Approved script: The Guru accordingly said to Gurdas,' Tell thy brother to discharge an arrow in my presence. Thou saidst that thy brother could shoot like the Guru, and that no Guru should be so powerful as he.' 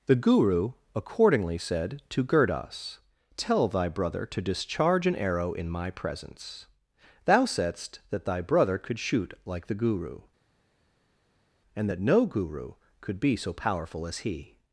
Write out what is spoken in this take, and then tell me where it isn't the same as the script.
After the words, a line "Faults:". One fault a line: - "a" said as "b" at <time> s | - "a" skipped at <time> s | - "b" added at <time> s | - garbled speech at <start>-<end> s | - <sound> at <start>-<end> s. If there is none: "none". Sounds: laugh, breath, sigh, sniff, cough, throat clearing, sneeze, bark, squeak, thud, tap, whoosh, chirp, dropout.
The Guru accordingly said to Gurdas,' Tell thy brother to discharge an arrow in my presence. Thou saidst that thy brother could shoot like the Guru, and that no Guru could be so powerful as he.'
Faults:
- "should" said as "could" at 13.0 s